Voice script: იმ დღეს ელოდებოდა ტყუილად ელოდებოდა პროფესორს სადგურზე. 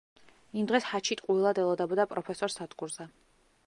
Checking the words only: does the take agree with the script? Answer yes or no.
no